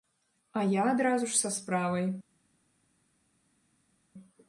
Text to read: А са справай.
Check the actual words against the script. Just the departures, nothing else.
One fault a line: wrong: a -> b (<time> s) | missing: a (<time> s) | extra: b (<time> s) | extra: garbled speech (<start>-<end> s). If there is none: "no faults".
extra: я адразу ж (0.6 s)